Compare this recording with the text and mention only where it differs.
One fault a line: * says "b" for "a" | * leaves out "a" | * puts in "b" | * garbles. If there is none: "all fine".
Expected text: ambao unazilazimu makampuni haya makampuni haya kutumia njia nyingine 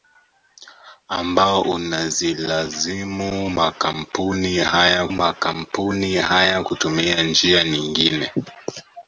all fine